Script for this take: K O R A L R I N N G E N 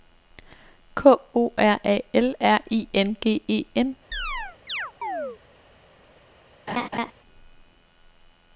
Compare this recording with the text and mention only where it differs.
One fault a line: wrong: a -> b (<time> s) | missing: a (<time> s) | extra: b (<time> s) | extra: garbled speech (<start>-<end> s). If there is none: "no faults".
missing: N (3.2 s)